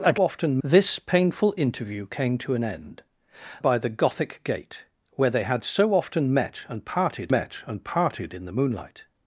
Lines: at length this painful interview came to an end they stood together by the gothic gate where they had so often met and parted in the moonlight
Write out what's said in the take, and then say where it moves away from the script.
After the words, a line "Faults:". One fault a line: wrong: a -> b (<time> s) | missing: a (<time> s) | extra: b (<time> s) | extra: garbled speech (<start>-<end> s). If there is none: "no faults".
at often this painful interview came to an end by the gothic gate where they had so often met and parted met and parted in the moonlight
Faults:
wrong: length -> often (0.2 s)
missing: they stood together (3.0 s)
extra: met and parted (7.3 s)